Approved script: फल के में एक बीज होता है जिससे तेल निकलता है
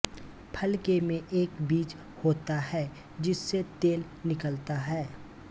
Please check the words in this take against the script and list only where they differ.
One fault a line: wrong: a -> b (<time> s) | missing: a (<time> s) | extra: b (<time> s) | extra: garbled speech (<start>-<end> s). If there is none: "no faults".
no faults